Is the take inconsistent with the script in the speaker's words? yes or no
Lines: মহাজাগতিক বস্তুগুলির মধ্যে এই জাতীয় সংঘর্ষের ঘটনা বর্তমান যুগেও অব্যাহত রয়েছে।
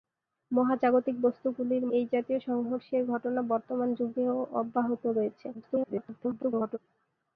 yes